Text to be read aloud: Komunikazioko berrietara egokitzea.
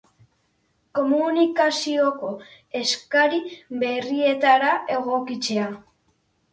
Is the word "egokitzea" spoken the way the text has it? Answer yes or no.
yes